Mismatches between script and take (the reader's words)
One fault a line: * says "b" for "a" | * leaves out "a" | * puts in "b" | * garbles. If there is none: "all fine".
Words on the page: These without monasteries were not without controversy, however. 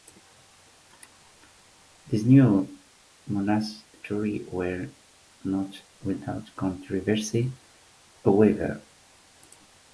* says "new" for "without"